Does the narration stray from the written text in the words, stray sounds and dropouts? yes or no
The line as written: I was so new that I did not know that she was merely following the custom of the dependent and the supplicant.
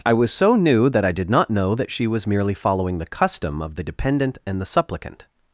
no